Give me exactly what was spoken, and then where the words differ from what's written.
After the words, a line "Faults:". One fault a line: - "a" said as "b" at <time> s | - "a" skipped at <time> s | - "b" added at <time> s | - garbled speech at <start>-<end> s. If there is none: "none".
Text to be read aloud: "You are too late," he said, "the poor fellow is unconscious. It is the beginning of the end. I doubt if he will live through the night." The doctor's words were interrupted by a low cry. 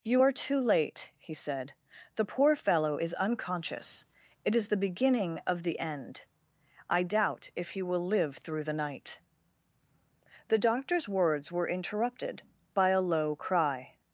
"You are too late," he said, "the poor fellow is unconscious. It is the beginning of the end. I doubt if he will live through the night." The doctor's words were interrupted by a low cry.
Faults:
none